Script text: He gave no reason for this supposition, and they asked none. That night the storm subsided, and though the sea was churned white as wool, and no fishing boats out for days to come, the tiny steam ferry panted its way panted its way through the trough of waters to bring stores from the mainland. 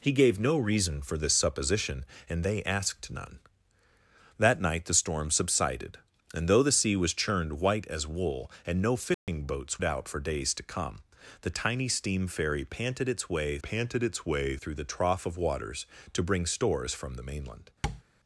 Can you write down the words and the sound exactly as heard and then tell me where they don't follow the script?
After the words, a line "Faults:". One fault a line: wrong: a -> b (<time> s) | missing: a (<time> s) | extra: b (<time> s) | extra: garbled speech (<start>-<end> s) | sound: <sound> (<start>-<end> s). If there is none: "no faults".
He gave no reason for this supposition, and they asked none. That night the storm subsided, and though the sea was churned white as wool, and no fishing boats out for days to come, the tiny steam ferry panted its way panted its way through the trough of waters to bring stores from the mainland.
Faults:
sound: dropout (9.1-9.3 s)
sound: tap (17.8-18.0 s)